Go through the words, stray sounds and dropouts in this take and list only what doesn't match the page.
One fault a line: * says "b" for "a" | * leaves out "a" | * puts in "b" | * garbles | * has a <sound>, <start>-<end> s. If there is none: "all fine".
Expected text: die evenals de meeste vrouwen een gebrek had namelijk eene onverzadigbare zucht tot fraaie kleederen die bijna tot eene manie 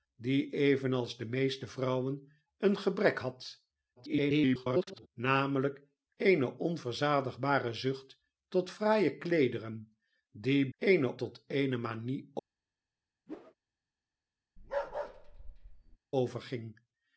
* garbles
* says "eene" for "bijna"
* has a whoosh, 13.3-13.5 s
* has a bark, 14.6-16.0 s